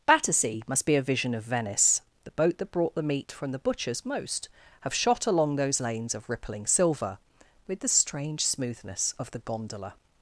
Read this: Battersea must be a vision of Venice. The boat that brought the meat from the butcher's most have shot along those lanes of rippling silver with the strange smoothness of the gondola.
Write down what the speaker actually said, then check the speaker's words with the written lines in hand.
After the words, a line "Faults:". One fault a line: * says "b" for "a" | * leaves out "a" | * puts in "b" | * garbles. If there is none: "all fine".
Battersea must be a vision of Venice. The boat that brought the meat from the butcher's most have shot along those lanes of rippling silver with the strange smoothness of the gondola.
Faults:
all fine